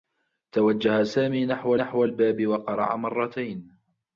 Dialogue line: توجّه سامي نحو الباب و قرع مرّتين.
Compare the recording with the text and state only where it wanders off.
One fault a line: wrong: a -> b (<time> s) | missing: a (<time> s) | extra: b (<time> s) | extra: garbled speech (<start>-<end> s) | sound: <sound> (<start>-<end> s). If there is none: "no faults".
extra: نحو (1.7 s)